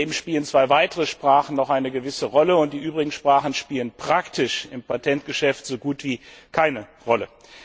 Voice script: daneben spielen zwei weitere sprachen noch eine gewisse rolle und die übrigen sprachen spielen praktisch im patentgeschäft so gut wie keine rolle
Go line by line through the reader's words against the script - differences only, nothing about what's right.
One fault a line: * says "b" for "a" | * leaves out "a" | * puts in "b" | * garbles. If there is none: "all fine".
all fine